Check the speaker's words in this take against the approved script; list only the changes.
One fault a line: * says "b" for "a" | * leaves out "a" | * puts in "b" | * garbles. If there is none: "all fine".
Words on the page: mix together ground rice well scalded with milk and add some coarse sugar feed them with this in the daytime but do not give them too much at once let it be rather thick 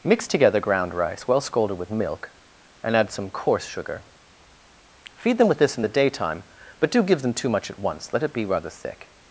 * leaves out "not"